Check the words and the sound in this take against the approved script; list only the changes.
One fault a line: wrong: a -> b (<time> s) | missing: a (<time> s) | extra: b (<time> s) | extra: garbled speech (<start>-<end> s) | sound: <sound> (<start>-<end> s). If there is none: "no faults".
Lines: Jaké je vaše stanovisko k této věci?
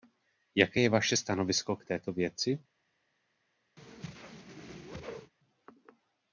sound: whoosh (3.8-5.3 s)